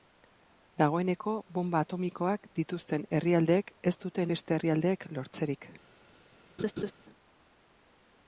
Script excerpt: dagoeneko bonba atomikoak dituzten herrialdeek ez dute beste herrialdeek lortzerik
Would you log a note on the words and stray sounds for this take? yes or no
yes